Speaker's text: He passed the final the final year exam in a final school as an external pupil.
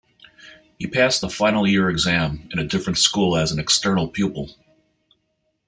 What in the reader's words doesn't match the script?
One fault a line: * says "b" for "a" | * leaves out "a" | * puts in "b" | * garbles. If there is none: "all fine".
* leaves out "the final"
* says "different" for "final"